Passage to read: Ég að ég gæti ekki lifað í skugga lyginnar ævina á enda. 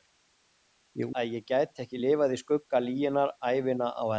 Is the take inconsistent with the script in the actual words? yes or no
no